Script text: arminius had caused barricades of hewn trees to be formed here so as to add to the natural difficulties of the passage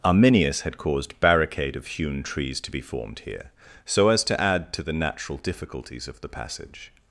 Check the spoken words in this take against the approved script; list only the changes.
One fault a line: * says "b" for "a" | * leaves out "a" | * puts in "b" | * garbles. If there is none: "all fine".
* says "barricade" for "barricades"